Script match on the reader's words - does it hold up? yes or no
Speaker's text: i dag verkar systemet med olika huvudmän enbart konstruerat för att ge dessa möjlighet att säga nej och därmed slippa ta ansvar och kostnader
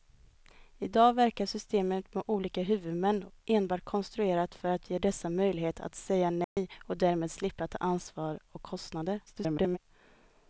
no